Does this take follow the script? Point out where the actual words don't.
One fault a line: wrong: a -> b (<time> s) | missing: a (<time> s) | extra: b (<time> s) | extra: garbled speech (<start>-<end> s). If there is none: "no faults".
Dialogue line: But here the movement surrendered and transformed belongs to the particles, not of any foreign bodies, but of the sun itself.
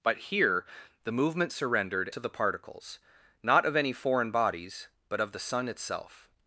missing: and transformed belongs (2.1 s)